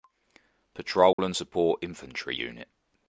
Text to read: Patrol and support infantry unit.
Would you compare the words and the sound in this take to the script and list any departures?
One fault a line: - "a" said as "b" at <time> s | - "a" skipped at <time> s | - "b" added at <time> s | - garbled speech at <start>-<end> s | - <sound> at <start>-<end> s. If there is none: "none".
- dropout at 1.1-1.2 s